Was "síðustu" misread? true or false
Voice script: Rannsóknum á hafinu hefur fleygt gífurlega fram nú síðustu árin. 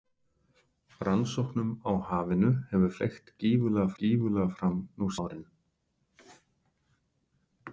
true